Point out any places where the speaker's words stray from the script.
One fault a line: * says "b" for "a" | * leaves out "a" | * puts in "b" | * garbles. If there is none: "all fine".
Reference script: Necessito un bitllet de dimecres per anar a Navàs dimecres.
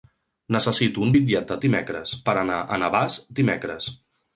all fine